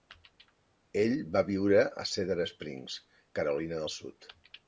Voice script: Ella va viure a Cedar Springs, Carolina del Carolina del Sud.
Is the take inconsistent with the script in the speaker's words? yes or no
yes